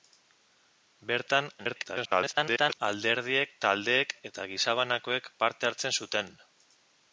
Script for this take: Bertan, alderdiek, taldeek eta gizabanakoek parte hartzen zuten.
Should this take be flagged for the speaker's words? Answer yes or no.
yes